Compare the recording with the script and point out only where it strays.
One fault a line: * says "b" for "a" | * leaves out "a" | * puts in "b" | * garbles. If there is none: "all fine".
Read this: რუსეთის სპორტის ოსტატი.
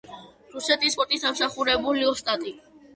* puts in "დამსახურებული"